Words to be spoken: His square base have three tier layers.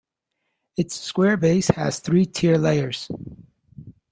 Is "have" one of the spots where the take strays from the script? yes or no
yes